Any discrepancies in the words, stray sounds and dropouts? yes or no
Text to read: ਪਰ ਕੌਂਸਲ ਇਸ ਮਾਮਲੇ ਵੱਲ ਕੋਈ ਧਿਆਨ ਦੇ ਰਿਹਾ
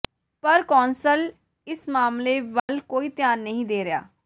yes